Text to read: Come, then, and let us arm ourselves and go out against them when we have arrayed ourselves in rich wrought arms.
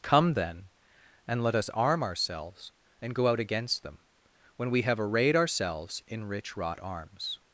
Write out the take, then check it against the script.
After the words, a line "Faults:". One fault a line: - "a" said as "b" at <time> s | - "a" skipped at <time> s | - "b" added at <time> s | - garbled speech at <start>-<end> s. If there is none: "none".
Come, then, and let us arm ourselves and go out against them when we have arrayed ourselves in rich wrought arms.
Faults:
none